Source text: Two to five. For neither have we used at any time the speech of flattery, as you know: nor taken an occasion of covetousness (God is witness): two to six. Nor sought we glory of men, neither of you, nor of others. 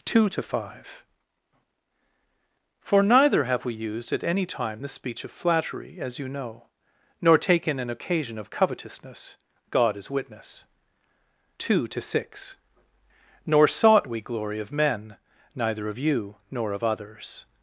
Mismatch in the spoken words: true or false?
false